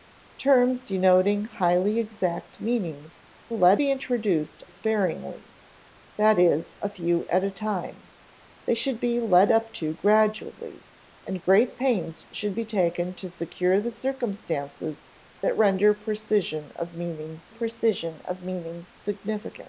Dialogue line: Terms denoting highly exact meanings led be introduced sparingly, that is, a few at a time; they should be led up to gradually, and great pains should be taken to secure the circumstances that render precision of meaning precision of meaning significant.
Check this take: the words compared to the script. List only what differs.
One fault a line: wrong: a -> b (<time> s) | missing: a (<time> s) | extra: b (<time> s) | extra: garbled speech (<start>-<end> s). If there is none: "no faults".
no faults